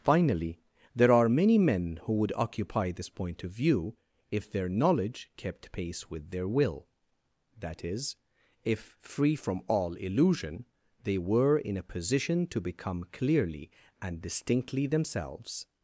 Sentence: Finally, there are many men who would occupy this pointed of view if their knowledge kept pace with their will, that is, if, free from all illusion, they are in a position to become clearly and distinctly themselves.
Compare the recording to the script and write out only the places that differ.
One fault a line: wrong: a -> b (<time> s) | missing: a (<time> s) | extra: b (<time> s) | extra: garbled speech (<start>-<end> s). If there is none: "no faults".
wrong: pointed -> point (3.1 s)
wrong: are -> were (11.2 s)